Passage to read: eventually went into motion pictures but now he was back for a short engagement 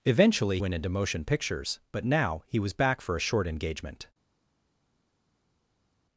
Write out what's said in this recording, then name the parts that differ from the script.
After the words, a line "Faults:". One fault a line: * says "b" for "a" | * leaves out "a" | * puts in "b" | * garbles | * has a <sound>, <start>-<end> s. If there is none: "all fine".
eventually went into motion pictures but now he was back for a short engagement
Faults:
all fine